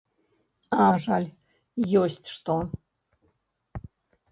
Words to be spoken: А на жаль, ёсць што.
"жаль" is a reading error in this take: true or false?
false